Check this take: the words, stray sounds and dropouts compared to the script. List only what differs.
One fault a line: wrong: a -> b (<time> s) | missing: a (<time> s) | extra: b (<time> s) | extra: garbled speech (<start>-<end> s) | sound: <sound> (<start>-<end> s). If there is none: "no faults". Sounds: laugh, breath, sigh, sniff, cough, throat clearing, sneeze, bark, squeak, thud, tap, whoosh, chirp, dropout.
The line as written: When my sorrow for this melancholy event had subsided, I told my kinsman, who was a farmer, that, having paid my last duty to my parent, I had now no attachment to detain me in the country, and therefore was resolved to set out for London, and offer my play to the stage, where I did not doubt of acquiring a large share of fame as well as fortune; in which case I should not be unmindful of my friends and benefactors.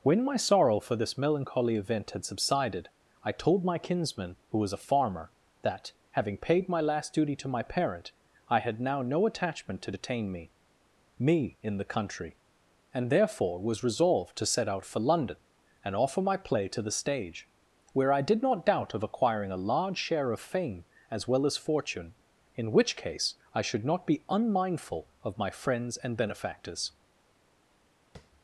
extra: me (11.2 s)
sound: tap (28.2-28.3 s)